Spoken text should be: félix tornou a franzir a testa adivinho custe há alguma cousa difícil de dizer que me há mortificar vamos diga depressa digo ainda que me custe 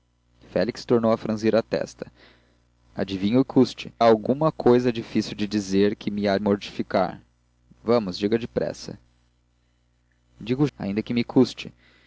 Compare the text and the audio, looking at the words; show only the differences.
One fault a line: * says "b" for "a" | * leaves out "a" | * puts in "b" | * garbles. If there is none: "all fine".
all fine